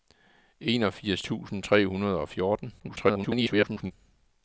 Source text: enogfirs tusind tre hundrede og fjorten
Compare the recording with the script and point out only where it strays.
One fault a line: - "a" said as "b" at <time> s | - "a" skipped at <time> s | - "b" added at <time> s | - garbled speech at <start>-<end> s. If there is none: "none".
- garbled speech at 2.8-3.9 s